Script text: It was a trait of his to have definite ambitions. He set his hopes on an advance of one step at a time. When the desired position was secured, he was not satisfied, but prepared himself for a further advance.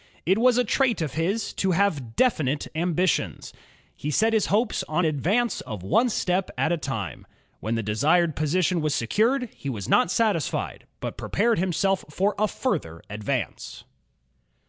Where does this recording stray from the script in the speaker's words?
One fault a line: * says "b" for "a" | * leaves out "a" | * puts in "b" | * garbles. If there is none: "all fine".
* leaves out "an"